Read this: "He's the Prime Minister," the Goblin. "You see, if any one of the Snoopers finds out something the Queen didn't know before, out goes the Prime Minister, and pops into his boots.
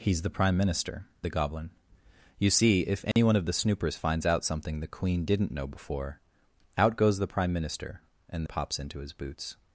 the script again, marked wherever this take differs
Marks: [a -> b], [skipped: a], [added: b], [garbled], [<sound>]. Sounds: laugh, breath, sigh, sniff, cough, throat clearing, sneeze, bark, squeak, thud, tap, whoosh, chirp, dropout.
"He's the Prime Minister," the Goblin. "You see, if any [dropout] one of the Snoopers finds out something the Queen didn't know before, out goes the Prime Minister, and pops into his boots.